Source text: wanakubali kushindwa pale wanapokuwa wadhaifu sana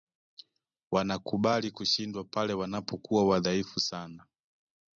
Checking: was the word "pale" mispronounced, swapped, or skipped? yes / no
no